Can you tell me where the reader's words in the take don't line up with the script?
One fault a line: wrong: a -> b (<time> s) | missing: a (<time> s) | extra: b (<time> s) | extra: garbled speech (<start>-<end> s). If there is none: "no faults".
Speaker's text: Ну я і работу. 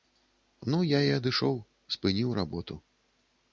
extra: адышоў спыніў (1.2 s)